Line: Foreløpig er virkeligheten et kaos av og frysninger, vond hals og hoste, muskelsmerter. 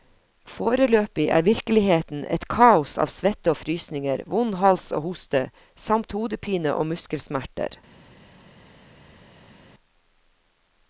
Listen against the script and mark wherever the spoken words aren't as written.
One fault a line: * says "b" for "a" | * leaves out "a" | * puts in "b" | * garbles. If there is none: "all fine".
* puts in "svette"
* puts in "samt hodepine og"